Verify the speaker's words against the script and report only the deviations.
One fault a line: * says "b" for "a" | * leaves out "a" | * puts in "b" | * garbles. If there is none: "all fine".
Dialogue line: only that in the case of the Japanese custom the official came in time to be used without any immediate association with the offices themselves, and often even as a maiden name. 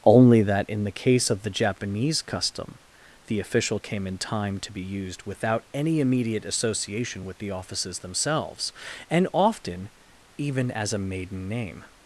all fine